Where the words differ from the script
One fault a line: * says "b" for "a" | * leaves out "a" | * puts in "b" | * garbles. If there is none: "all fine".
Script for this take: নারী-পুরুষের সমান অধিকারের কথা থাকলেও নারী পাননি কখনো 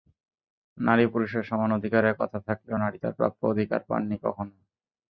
* puts in "তাঁর প্রাপ্য অধিকার"